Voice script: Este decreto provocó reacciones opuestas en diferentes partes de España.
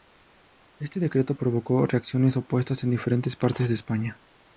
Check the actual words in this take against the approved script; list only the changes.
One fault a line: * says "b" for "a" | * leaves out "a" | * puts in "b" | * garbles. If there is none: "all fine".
all fine